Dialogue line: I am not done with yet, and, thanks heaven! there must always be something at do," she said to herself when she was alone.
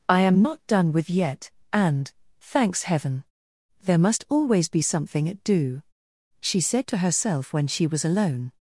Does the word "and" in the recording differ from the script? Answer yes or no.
no